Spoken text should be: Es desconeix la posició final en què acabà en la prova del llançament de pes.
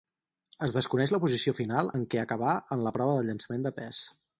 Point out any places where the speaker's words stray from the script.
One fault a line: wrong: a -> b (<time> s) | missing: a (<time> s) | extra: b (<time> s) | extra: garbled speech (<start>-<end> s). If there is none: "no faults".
no faults